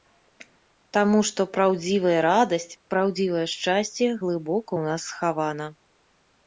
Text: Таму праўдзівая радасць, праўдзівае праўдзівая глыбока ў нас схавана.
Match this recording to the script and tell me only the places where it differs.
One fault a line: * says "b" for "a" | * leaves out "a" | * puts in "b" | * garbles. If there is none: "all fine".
* puts in "што"
* says "шчасце" for "праўдзівая"